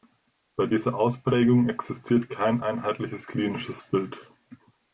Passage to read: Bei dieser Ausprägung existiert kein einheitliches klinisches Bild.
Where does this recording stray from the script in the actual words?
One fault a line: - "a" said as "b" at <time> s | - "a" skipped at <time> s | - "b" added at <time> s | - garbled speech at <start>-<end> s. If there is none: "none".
none